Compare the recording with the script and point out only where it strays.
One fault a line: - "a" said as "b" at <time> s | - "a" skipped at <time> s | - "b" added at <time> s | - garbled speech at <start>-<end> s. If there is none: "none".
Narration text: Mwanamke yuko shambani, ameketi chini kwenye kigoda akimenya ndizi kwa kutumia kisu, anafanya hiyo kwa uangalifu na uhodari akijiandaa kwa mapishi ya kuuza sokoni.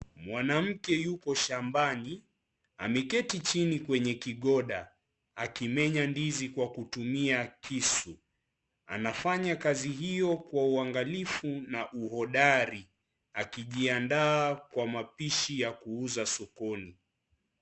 - "kazi" added at 9.6 s